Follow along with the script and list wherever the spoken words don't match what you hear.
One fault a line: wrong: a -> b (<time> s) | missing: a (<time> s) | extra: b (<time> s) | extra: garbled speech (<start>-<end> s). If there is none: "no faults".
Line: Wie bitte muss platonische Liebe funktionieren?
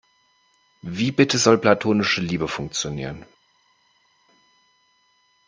wrong: muss -> soll (1.4 s)